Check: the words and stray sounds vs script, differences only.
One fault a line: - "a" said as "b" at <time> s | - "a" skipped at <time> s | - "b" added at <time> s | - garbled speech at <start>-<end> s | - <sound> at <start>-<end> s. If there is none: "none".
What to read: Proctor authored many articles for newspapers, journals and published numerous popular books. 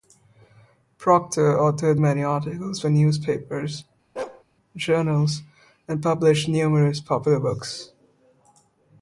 - bark at 4.2-4.4 s